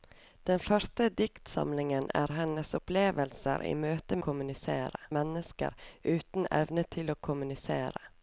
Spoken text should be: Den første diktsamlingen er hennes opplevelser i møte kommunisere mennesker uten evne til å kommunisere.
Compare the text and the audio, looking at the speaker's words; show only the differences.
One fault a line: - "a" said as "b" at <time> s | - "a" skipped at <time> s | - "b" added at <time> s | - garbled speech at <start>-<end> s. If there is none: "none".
none